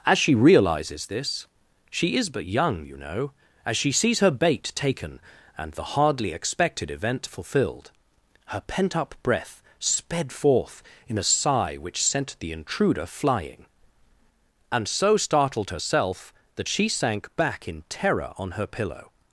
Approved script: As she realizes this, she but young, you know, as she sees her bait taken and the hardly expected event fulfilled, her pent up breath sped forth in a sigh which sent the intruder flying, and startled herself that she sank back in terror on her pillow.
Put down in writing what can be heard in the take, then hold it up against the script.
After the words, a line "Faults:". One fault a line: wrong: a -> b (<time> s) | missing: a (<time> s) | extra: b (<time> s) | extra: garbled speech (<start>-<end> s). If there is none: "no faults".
As she realizes this, she is but young, you know, as she sees her bait taken and the hardly expected event fulfilled, her pent up breath sped forth in a sigh which sent the intruder flying, and so startled herself that she sank back in terror on her pillow.
Faults:
extra: is (2.1 s)
extra: so (14.9 s)